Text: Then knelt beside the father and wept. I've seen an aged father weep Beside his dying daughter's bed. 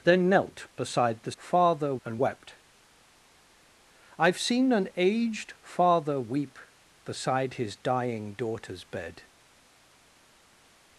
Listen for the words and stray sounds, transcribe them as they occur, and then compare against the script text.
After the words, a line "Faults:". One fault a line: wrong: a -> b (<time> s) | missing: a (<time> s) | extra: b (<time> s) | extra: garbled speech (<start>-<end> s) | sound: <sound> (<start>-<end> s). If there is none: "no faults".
Then knelt beside the father and wept. I've seen an aged father weep Beside his dying daughter's bed.
Faults:
no faults